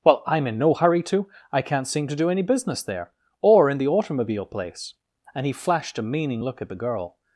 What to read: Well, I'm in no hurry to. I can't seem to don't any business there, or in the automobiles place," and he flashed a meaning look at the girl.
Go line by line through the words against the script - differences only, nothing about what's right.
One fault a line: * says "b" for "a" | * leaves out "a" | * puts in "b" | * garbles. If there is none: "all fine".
* says "do" for "don't"
* says "automobile" for "automobiles"